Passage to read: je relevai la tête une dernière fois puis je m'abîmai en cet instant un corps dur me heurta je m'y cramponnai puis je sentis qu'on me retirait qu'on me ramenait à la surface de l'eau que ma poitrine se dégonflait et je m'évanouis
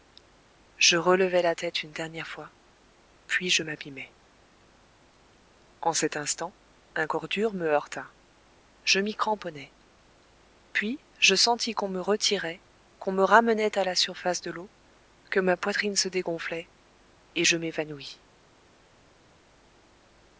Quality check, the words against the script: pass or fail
pass